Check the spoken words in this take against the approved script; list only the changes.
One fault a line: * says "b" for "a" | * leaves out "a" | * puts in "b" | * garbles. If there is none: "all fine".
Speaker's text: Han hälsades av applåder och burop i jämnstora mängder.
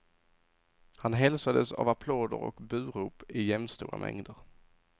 all fine